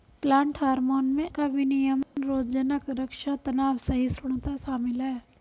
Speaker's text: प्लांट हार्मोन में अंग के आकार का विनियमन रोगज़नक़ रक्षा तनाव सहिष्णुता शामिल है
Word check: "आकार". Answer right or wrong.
wrong